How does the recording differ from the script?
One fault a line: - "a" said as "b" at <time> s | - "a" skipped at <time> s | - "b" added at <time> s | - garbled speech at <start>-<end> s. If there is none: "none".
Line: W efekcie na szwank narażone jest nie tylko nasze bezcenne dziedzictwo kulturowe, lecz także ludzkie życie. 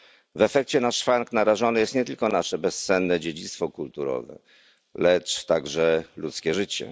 none